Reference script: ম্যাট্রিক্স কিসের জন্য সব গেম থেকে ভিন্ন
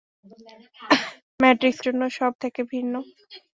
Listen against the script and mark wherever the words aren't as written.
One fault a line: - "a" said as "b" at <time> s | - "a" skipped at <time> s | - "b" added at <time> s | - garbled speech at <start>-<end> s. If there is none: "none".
- "কিসের" skipped at 1.8 s
- "গেম" skipped at 2.3 s